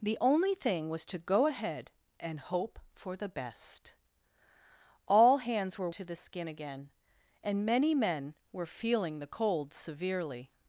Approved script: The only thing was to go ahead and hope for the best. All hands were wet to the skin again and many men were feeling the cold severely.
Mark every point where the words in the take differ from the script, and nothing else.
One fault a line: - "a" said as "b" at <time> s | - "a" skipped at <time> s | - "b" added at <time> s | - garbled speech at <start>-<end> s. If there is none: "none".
- "wet" skipped at 5.9 s